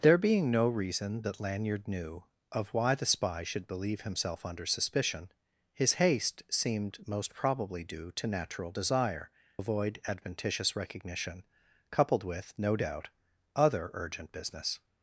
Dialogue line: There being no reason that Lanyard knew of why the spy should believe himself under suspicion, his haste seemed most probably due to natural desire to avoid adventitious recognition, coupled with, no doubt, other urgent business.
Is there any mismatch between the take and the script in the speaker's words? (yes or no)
yes